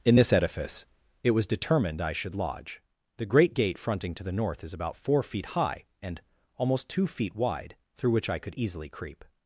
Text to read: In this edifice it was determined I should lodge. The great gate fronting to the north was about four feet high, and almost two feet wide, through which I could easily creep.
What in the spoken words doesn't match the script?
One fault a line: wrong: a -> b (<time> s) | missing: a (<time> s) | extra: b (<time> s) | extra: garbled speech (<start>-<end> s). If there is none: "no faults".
wrong: was -> is (4.6 s)